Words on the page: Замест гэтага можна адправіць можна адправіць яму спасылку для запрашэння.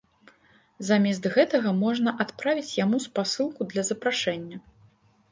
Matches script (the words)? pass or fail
fail